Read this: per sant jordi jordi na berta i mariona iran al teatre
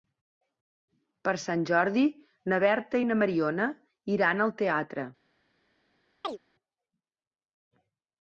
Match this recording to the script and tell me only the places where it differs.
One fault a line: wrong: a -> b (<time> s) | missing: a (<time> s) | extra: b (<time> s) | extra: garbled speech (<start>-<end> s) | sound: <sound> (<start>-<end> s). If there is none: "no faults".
missing: jordi (2.0 s)
extra: na (3.1 s)
sound: chirp (6.2-6.4 s)